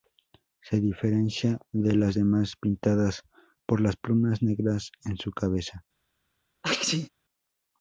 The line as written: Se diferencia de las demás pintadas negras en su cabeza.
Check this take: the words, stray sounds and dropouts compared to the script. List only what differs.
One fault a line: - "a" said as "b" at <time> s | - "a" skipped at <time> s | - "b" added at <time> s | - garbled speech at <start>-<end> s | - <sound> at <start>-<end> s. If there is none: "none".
- "por las plumas" added at 3.6 s
- sneeze at 6.6-7.1 s